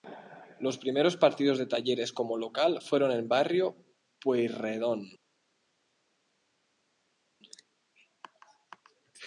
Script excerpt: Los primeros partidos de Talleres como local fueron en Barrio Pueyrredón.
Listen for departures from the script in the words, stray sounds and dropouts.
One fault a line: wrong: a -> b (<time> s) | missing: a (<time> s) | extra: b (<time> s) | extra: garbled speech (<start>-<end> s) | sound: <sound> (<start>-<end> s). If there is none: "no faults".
no faults